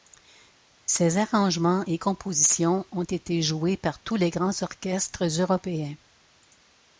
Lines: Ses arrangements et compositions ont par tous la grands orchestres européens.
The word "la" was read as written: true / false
false